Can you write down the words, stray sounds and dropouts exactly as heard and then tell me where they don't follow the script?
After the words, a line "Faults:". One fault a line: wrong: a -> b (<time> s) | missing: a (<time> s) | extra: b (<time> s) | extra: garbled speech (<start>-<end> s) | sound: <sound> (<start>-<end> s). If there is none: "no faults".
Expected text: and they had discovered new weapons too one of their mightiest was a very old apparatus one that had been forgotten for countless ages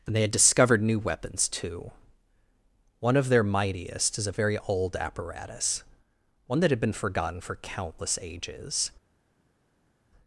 and they had discovered new weapons too one of their mightiest is a very old apparatus one that had been forgotten for countless ages
Faults:
wrong: was -> is (4.2 s)